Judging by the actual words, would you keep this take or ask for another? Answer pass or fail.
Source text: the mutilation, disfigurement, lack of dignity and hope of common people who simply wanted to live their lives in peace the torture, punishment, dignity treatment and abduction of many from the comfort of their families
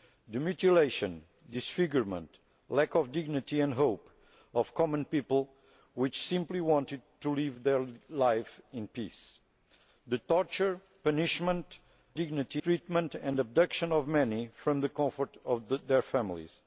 pass